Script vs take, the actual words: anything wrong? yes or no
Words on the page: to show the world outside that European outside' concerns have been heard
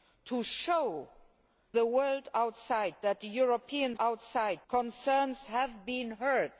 no